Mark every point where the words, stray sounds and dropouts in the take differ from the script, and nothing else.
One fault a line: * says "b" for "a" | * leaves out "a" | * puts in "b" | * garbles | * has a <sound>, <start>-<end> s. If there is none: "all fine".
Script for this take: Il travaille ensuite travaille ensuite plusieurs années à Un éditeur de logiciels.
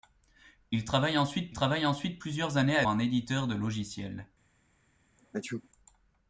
* has a sneeze, 5.2-5.7 s